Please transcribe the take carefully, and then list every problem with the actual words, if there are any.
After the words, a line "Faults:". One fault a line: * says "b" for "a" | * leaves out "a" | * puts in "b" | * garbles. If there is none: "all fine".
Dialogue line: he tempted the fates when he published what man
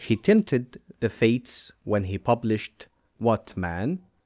he tempted the fates when he published what man
Faults:
all fine